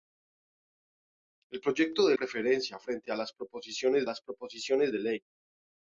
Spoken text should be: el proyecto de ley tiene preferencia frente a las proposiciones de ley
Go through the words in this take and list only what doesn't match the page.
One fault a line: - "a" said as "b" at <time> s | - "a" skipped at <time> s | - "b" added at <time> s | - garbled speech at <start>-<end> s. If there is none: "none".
- "ley tiene" skipped at 2.1 s
- "las proposiciones" added at 4.0 s